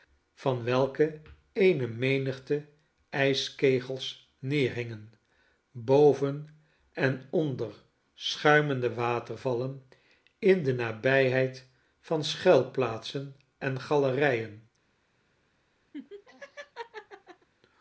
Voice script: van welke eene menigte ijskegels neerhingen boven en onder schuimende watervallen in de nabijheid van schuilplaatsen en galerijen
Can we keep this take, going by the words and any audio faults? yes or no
no